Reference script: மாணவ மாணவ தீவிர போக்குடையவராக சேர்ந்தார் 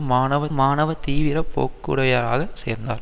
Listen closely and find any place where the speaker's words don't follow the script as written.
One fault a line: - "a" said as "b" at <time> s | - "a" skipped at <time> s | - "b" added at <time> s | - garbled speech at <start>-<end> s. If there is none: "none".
none